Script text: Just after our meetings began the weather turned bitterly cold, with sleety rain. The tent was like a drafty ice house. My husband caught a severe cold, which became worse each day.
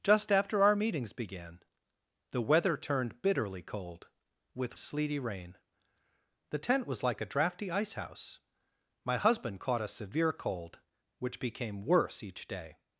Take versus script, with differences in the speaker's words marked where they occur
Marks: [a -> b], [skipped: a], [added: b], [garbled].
Just after our meetings began the weather turned bitterly cold, with sleety rain. The tent was like a drafty ice house. My husband caught a severe cold, which became worse each day.